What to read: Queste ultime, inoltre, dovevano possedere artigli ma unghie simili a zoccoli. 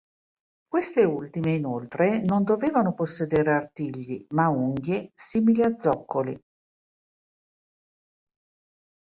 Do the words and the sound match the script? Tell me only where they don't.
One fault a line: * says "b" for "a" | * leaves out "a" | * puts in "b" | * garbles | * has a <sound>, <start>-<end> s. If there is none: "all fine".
* puts in "non"